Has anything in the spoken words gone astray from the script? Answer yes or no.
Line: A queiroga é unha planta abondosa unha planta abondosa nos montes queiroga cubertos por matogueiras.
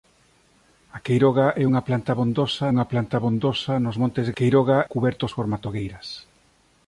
no